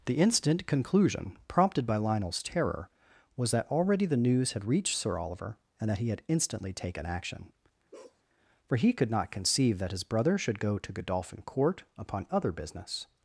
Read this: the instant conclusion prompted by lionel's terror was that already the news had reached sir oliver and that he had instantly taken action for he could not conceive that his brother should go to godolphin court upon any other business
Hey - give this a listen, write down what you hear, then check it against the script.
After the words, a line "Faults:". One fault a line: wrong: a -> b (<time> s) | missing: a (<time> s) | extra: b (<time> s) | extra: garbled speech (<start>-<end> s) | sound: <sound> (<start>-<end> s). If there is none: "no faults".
the instant conclusion prompted by lionel's terror was that already the news had reached sir oliver and that he had instantly taken action for he could not conceive that his brother should go to godolphin court upon other business
Faults:
sound: bark (7.9-8.2 s)
missing: any (12.3 s)